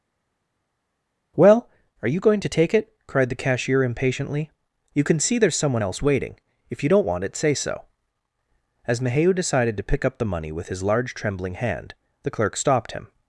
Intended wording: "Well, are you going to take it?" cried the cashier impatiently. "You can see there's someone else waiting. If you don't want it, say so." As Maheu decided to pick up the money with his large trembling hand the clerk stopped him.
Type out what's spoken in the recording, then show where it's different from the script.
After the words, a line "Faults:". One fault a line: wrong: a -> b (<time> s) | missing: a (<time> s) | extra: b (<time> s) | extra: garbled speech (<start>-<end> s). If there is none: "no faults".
"Well, are you going to take it?" cried the cashier impatiently. "You can see there's someone else waiting. If you don't want it, say so." As Maheu decided to pick up the money with his large trembling hand the clerk stopped him.
Faults:
no faults